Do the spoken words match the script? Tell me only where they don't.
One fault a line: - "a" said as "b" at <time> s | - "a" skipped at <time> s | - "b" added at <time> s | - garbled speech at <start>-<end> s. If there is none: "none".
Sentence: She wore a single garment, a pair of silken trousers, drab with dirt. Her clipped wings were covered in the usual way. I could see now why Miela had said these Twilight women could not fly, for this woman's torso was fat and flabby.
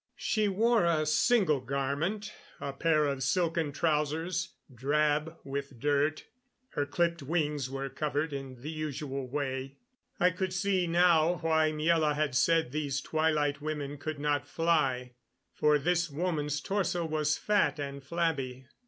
none